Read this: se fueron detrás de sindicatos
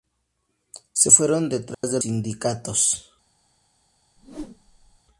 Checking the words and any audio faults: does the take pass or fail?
fail